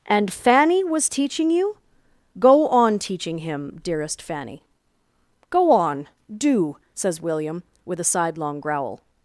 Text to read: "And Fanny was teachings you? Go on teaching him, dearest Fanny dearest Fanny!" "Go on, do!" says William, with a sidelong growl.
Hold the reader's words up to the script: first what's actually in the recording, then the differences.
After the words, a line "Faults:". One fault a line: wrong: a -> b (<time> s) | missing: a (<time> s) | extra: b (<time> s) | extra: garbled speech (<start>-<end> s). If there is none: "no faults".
"And Fanny was teaching you? Go on teaching him, dearest Fanny!" "Go on, do!" says William, with a sidelong growl.
Faults:
wrong: teachings -> teaching (1.1 s)
missing: dearest Fanny (4.6 s)